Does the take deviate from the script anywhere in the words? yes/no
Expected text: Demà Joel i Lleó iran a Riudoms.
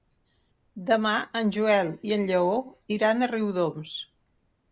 yes